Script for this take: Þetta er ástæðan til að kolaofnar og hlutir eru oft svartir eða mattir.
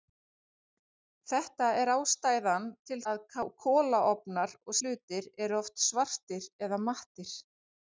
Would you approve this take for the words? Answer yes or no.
yes